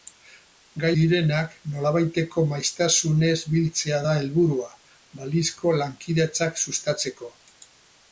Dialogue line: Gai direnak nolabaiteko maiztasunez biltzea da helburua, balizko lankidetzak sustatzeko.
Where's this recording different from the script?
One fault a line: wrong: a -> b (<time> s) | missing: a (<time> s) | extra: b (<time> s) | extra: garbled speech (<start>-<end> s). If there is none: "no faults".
no faults